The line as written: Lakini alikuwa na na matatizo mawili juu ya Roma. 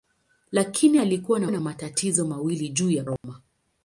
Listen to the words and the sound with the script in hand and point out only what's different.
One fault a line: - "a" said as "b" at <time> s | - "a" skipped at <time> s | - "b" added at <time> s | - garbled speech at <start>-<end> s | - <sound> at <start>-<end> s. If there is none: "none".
- dropout at 3.2-3.2 s